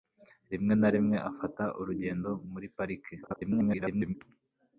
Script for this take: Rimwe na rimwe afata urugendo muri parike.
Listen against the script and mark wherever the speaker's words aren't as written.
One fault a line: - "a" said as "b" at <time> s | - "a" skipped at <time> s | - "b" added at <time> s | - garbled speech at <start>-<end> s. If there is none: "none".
- garbled speech at 3.2-4.1 s